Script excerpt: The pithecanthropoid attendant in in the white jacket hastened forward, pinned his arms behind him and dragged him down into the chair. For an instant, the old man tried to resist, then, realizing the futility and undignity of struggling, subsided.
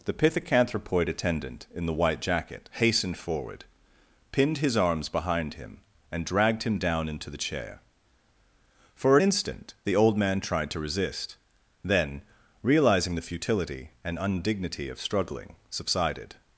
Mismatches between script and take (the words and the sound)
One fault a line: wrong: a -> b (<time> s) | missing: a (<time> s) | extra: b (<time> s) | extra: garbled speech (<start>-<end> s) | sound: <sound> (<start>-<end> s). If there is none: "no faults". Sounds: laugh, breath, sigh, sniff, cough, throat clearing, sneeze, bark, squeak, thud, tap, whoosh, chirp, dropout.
missing: in (1.9 s)